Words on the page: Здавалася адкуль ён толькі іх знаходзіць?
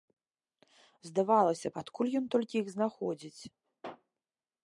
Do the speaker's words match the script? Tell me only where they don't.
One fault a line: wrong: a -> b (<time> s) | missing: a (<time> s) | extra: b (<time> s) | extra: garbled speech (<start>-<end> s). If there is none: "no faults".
no faults